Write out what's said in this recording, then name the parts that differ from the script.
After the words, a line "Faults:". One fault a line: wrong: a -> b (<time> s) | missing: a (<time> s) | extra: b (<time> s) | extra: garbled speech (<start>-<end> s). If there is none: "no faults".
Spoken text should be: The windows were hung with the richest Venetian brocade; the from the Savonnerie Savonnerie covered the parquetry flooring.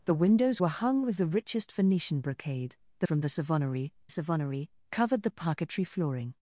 The windows were hung with the richest Venetian brocade; the from the Savonnerie Savonnerie covered the parquetry flooring.
Faults:
no faults